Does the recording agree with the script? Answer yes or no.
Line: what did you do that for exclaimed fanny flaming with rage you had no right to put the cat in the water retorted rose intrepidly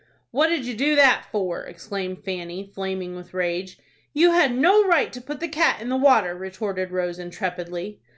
yes